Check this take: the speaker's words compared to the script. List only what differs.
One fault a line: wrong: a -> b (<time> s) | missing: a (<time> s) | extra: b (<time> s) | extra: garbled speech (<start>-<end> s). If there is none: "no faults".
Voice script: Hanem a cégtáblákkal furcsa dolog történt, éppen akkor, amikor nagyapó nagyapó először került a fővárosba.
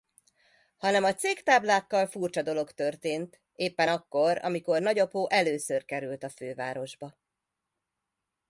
missing: nagyapó (5.3 s)